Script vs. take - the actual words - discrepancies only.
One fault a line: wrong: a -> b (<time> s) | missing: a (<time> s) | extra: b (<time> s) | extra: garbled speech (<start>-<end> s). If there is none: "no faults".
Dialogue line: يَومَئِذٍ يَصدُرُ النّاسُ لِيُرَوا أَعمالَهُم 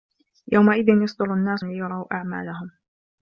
no faults